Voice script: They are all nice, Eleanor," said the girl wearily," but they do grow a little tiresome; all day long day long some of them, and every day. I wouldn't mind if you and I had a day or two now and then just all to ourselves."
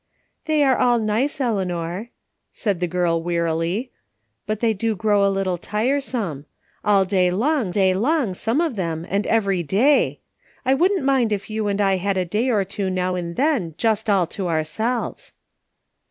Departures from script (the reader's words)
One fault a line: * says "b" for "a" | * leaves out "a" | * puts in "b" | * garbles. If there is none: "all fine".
all fine